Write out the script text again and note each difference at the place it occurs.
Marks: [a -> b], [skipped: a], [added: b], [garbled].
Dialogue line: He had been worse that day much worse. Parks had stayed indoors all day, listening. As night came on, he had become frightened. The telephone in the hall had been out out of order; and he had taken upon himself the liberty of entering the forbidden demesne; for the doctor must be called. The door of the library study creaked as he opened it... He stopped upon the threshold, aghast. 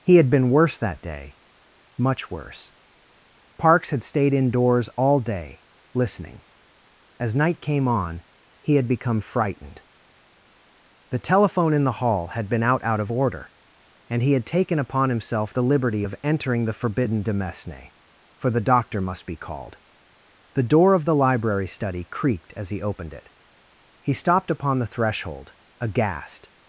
He had been worse that day much worse. Parks had stayed indoors all day, listening. As night came on, he had become frightened. The telephone in the hall had been out out of order; and he had taken upon himself the liberty of entering the forbidden demesne; for the doctor must be called. The door of the library study creaked as he opened it... He stopped upon the threshold, aghast.